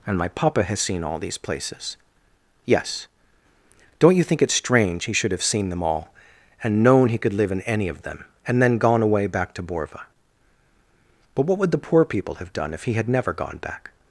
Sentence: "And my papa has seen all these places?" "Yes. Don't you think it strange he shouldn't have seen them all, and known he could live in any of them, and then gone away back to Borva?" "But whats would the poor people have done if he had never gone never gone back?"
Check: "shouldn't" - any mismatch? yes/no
yes